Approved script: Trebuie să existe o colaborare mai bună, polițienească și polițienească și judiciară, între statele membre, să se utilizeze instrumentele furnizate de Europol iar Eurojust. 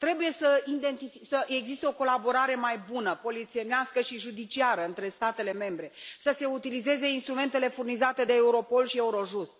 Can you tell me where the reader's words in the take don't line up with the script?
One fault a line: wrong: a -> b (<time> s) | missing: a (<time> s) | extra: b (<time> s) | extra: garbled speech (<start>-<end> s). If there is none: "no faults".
missing: polițienească și (4.2 s)
wrong: iar -> și (8.8 s)